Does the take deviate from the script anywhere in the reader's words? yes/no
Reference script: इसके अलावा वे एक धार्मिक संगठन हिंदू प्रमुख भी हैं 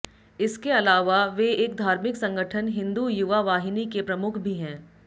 yes